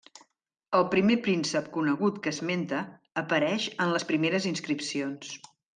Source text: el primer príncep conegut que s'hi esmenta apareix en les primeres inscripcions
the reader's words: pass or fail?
fail